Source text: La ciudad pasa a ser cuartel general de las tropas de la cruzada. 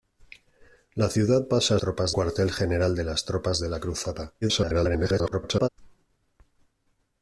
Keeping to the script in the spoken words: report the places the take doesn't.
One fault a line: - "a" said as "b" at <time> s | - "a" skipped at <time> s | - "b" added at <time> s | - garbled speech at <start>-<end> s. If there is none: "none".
- "ser" said as "tropas" at 1.8 s
- garbled speech at 4.4-5.7 s